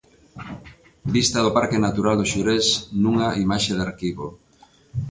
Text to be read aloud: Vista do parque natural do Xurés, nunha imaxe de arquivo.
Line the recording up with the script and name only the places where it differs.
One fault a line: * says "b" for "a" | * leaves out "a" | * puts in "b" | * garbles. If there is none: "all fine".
all fine